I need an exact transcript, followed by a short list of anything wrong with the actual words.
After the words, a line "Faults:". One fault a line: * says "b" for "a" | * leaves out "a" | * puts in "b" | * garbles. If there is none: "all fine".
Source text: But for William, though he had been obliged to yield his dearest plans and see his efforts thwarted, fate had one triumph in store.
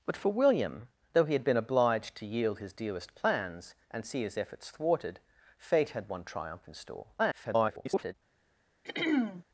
But for William, though he had been obliged to yield his dearest plans and see his efforts thwarted, fate had one triumph in store. [garbled]
Faults:
* garbles